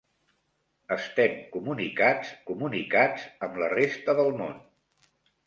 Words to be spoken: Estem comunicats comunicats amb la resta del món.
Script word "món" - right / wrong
right